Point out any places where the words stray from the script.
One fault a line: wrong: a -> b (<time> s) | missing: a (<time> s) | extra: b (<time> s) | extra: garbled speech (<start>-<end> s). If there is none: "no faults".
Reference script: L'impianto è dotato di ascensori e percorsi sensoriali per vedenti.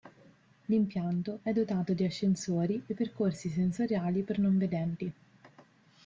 extra: non (4.4 s)